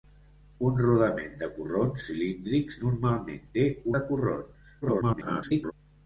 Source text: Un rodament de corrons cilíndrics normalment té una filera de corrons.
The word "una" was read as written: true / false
false